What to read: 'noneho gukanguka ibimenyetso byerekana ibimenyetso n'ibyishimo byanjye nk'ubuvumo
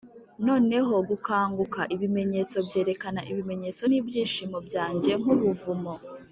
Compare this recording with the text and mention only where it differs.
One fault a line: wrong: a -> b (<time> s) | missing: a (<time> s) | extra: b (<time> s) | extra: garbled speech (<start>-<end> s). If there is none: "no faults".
no faults